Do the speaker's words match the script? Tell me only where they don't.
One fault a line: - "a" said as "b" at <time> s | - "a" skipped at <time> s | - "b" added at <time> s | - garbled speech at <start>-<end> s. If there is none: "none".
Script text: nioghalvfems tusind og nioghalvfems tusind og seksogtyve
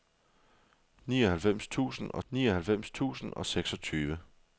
none